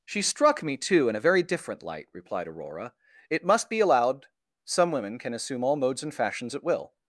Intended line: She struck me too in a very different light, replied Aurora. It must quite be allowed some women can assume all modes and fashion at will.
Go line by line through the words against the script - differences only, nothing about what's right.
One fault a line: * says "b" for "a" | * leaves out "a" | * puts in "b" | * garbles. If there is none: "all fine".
* leaves out "quite"
* says "fashions" for "fashion"